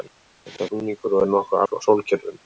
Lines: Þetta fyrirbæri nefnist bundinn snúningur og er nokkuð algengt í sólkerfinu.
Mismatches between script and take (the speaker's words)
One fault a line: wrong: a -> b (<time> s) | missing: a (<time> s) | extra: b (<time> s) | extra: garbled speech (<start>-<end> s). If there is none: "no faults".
missing: fyrirbæri nefnist bundinn (0.7 s)
missing: algengt (1.6 s)